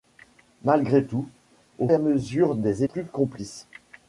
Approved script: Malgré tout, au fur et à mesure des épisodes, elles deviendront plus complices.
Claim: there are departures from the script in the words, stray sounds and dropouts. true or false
true